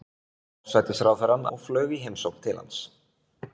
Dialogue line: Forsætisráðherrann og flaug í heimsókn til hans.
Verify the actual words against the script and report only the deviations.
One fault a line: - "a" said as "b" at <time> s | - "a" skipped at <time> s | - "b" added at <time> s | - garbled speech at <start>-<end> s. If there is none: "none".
none